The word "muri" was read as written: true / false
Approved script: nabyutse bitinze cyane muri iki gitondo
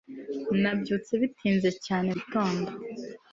false